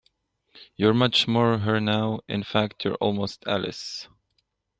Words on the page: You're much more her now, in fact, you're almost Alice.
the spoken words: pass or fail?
pass